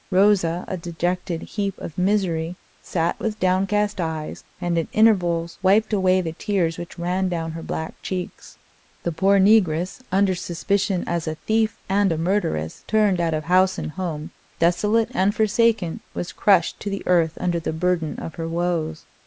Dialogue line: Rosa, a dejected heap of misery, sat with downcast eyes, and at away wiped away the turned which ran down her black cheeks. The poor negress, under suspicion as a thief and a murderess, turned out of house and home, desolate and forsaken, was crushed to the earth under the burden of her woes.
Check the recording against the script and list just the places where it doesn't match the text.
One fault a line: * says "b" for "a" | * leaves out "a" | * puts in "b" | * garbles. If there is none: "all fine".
* says "intervals" for "away"
* says "tears" for "turned"